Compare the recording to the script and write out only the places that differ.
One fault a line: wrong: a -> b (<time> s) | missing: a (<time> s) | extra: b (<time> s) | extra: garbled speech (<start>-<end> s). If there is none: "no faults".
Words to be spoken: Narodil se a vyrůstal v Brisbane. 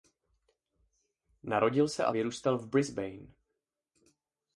no faults